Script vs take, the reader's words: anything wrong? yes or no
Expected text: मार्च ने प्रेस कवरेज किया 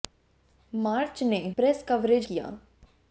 no